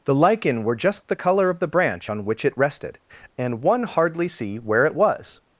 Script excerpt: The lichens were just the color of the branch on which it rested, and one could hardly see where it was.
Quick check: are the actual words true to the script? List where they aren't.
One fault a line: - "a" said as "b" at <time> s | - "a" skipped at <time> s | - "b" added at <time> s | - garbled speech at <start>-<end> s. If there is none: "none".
- "lichens" said as "lichen" at 0.1 s
- "could" skipped at 3.8 s